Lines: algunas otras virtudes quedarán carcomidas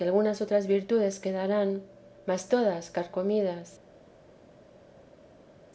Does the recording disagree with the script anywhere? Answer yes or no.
yes